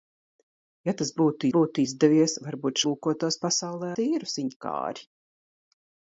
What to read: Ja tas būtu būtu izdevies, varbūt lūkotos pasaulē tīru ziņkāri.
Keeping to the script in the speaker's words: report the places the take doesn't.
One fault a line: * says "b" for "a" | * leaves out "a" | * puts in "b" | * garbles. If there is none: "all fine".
all fine